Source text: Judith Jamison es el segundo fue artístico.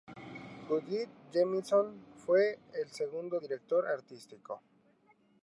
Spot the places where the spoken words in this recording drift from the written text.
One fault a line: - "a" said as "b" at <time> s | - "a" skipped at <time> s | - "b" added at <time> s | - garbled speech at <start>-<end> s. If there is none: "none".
- "es" said as "fue" at 2.2 s
- "fue" said as "director" at 3.3 s